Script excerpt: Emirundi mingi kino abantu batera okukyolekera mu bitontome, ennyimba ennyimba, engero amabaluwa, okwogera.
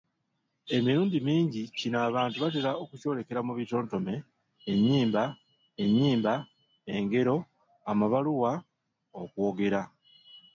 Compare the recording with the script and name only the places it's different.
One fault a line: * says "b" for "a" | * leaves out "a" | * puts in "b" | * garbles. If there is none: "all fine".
all fine